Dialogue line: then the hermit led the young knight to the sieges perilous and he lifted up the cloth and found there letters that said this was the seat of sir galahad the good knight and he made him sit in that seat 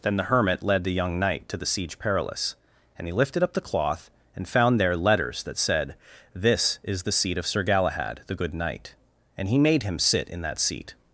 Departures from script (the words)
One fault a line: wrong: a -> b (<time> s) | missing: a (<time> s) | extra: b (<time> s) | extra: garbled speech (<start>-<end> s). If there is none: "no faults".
wrong: sieges -> siege (1.6 s)
wrong: was -> is (6.8 s)